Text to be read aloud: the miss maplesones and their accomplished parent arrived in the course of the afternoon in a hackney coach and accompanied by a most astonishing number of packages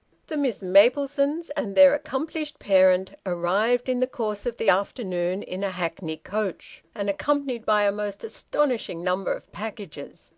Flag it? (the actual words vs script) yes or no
no